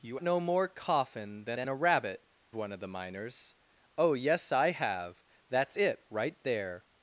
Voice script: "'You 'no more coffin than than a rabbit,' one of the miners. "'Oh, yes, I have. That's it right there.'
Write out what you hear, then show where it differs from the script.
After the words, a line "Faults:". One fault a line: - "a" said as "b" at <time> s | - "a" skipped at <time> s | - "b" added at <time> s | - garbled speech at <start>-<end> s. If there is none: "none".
"'You 'no more coffin than than a rabbit,' one of the miners. "'Oh, yes, I have. That's it right there.'
Faults:
none